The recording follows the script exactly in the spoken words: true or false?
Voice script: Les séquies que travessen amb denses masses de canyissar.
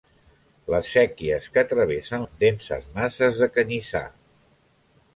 true